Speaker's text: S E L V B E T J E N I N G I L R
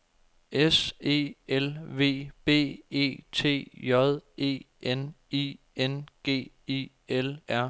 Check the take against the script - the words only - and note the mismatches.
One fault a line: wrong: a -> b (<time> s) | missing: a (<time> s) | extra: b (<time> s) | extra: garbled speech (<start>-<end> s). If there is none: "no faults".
no faults